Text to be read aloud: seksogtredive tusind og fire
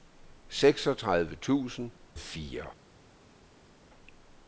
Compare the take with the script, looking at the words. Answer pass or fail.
pass